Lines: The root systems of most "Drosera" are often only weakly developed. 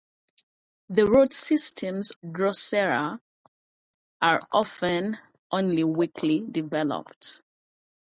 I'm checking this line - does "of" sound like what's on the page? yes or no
no